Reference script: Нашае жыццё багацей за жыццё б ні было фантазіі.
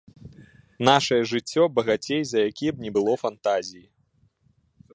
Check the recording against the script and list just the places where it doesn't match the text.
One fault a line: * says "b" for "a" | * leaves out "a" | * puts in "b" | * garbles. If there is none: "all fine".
* says "якія" for "жыццё"